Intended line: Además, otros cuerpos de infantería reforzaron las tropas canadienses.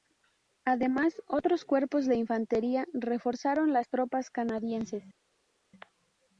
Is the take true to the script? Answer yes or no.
yes